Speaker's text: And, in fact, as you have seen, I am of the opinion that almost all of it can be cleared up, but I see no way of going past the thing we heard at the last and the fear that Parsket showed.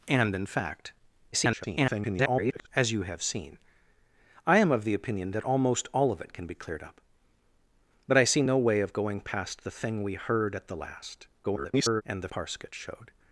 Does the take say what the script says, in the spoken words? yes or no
no